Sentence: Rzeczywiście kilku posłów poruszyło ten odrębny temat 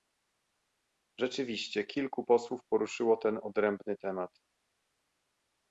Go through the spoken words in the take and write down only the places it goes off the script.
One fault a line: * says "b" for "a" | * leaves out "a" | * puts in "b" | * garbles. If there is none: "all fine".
all fine